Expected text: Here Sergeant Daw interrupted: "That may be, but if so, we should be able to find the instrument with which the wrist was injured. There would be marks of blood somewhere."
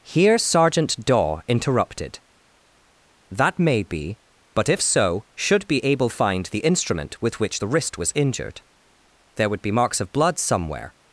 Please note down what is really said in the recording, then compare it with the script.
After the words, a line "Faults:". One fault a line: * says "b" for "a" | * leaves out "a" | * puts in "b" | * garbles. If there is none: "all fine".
Here Sergeant Daw interrupted: "That may be, but if so, should be able find the instrument with which the wrist was injured. There would be marks of blood somewhere."
Faults:
* leaves out "we"
* leaves out "to"